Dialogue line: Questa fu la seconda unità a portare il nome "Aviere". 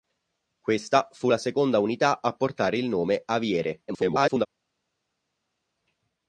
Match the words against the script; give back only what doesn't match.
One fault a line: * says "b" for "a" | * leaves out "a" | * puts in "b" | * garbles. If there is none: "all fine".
* garbles